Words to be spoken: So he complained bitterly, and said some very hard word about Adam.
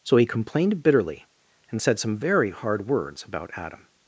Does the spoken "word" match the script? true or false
false